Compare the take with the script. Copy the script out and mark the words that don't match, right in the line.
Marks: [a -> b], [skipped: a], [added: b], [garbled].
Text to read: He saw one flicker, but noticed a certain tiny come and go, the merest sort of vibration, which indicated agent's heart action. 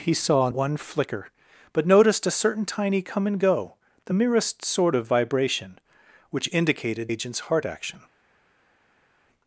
He saw one flicker, but noticed a certain tiny come and go, the merest sort of vibration, which indicated agent's heart action.